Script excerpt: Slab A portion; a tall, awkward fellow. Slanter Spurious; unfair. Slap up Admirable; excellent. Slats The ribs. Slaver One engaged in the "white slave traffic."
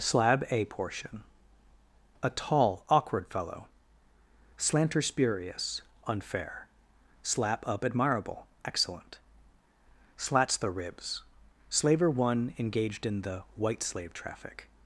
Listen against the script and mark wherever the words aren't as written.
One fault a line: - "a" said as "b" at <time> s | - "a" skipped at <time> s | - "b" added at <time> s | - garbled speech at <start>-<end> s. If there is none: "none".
none